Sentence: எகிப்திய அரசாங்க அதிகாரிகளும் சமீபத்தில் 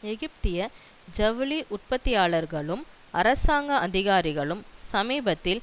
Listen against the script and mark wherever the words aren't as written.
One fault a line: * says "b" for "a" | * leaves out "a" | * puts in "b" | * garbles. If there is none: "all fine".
* puts in "ஜவுளி உற்பத்தியாளர்களும்"